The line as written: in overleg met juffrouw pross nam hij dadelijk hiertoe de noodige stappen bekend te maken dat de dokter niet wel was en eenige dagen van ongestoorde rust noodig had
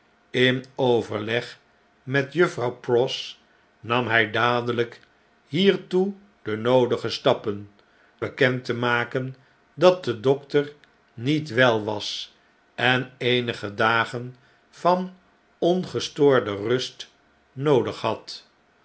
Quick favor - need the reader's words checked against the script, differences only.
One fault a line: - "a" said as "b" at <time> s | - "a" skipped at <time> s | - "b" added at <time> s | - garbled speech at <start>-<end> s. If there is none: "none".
none